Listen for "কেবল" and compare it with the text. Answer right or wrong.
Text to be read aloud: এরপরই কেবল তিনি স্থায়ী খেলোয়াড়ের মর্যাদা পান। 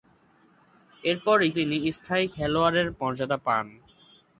wrong